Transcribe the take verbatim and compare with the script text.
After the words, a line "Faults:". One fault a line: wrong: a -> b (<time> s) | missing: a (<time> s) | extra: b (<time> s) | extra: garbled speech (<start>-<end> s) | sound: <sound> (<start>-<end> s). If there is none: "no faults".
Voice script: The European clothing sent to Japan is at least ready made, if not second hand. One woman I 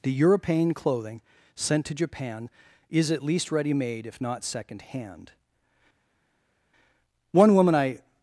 The European clothing sent to Japan is at least ready made, if not second hand. One woman I
Faults:
no faults